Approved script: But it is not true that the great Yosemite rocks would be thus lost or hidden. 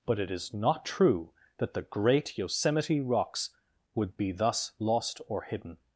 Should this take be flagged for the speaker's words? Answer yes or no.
no